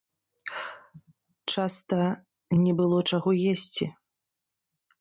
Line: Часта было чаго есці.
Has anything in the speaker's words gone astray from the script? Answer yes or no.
yes